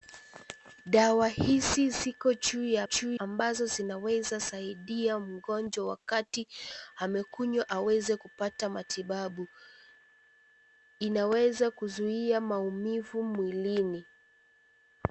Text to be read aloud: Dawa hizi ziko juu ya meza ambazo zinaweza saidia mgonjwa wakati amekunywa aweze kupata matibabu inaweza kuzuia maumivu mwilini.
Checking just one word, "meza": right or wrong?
wrong